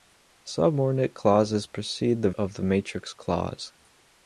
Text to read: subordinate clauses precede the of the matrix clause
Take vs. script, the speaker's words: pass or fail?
pass